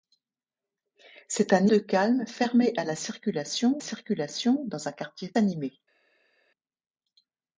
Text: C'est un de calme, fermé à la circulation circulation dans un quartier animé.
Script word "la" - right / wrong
right